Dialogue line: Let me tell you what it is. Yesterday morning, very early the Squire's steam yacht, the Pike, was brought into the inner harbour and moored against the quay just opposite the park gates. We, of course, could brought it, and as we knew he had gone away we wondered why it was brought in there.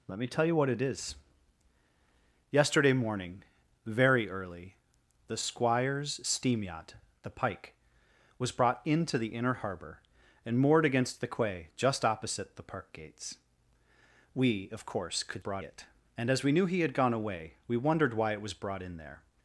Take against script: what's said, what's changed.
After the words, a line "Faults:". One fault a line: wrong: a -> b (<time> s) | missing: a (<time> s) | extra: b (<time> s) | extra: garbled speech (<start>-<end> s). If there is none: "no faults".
Let me tell you what it is. Yesterday morning, very early the Squire's steam yacht, the Pike, was brought into the inner harbour and moored against the quay just opposite the park gates. We, of course, could brought it, and as we knew he had gone away we wondered why it was brought in there.
Faults:
no faults